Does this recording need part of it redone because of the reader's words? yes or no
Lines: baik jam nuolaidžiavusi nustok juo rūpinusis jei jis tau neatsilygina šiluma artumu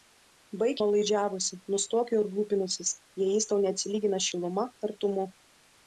yes